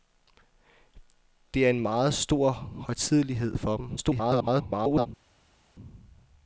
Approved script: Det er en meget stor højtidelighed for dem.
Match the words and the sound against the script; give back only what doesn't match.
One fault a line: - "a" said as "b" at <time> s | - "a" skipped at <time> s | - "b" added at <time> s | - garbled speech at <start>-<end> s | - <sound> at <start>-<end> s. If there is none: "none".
- garbled speech at 4.0-5.1 s